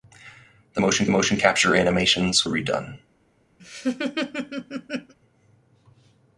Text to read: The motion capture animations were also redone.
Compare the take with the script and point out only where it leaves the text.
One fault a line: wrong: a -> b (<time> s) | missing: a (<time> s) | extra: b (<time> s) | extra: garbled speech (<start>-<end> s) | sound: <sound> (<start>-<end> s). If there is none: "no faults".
extra: motion (1.1 s)
missing: were also (2.4 s)
sound: laugh (3.6-5.1 s)